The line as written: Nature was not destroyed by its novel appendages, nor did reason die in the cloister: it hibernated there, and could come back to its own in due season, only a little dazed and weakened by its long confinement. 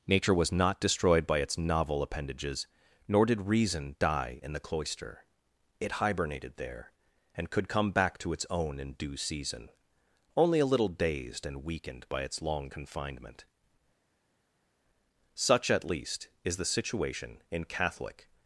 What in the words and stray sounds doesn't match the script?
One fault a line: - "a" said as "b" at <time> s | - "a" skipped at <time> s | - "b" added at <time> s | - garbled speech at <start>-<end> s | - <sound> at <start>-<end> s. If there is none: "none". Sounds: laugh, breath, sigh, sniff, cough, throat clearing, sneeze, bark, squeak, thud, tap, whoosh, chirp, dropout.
- "Such at least is the situation in Catholic" added at 15.3 s